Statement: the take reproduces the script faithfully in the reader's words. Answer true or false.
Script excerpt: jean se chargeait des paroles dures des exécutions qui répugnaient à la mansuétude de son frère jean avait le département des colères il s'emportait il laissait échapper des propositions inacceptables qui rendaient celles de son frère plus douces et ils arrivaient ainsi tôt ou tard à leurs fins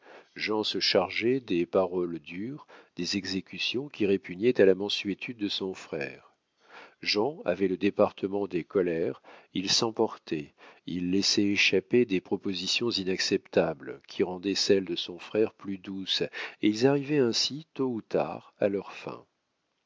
true